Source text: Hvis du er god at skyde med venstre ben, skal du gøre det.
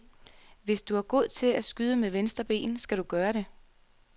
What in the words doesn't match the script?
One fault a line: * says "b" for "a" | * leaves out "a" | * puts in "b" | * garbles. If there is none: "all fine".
* puts in "til"